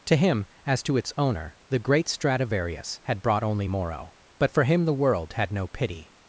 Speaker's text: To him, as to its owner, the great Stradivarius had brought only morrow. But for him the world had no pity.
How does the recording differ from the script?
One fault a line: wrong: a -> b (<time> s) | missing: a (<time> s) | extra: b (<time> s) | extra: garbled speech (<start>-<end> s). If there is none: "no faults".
no faults